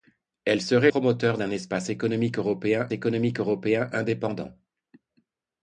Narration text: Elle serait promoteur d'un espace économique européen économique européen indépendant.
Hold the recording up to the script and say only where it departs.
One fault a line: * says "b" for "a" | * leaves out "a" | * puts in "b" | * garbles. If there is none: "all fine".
all fine